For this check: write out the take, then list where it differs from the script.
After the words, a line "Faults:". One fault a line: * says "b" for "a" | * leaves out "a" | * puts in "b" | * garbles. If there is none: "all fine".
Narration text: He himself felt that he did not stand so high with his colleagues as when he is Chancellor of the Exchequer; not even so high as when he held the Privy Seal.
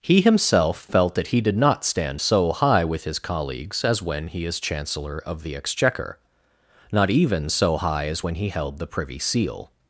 He himself felt that he did not stand so high with his colleagues as when he is Chancellor of the Exchequer; not even so high as when he held the Privy Seal.
Faults:
all fine